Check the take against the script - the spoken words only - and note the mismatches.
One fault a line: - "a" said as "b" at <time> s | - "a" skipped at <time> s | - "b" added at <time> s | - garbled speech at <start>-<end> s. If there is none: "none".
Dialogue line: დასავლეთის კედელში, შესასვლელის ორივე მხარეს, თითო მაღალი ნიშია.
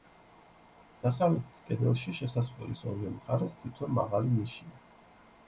none